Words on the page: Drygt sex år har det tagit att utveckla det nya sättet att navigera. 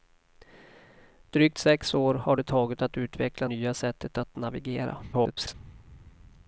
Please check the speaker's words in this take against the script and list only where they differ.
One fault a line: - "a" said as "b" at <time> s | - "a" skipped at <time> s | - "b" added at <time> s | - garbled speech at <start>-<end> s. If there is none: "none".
- "det" skipped at 3.5 s
- garbled speech at 5.1-5.5 s